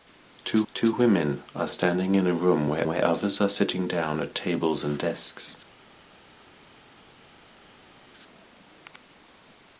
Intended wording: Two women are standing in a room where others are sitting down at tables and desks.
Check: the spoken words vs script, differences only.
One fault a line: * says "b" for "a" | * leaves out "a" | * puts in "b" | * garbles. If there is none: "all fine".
* puts in "two"
* puts in "where"